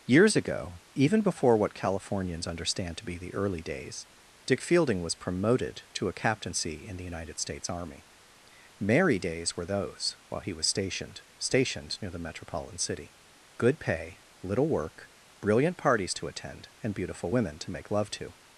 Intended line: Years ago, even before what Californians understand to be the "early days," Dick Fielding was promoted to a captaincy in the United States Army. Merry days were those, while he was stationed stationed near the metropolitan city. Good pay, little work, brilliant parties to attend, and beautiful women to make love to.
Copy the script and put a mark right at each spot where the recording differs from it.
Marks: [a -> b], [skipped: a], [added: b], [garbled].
Years ago, even before what Californians understand to be the "early days," Dick Fielding was promoted to a captaincy in the United States Army. Merry days were those, while he was stationed stationed near the metropolitan city. Good pay, little work, brilliant parties to attend, and beautiful women to make love to.